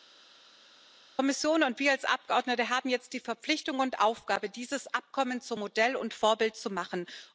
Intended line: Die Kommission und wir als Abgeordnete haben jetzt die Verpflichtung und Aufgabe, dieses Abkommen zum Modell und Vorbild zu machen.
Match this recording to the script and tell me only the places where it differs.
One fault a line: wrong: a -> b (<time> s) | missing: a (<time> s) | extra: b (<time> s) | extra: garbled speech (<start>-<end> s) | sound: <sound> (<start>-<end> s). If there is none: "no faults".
no faults